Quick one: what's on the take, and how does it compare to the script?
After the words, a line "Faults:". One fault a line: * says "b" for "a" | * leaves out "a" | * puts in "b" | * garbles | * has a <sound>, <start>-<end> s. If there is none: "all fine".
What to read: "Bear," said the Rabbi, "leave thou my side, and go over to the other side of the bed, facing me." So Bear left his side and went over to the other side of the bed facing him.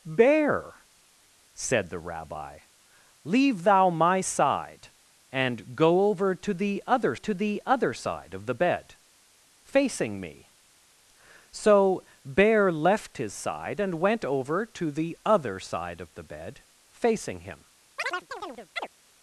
"Bear," said the Rabbi, "leave thou my side, and go over to the other to the other side of the bed, facing me." So Bear left his side and went over to the other side of the bed facing him.
Faults:
* puts in "to the other"
* has a chirp, 18.0-18.9 s